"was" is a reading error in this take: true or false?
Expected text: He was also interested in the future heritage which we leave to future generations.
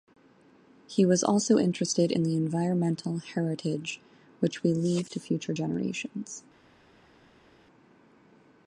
false